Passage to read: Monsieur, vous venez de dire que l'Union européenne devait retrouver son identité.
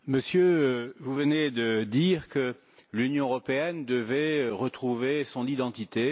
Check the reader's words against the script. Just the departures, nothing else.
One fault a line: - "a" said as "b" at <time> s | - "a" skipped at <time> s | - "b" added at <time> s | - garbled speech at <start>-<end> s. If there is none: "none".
none